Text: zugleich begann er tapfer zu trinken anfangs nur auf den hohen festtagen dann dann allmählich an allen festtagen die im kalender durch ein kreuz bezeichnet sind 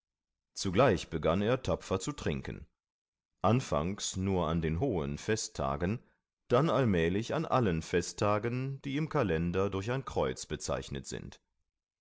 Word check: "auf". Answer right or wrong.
wrong